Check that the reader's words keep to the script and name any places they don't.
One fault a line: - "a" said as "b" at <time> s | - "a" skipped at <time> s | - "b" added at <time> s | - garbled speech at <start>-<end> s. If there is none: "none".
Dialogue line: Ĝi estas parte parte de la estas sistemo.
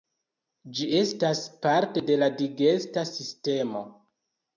- "parte" skipped at 2.0 s
- "estas" said as "digesta" at 2.4 s